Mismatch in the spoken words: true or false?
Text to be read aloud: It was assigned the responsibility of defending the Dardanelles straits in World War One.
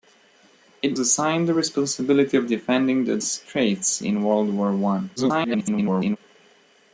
true